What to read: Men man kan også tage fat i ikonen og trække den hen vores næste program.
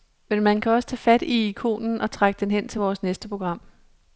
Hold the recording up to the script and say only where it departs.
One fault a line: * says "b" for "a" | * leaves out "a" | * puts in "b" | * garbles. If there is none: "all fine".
* puts in "til"